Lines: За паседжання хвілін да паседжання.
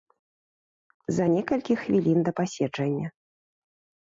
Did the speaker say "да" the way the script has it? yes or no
yes